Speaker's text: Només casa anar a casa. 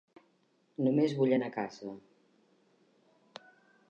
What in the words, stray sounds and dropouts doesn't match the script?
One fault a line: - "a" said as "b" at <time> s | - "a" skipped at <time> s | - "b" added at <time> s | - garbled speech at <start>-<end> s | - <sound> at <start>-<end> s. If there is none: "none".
- "casa" said as "vull" at 1.2 s